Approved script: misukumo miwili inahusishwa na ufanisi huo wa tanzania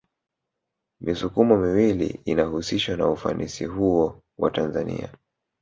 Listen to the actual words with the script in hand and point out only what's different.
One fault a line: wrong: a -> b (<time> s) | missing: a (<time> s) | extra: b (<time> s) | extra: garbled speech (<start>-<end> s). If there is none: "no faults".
no faults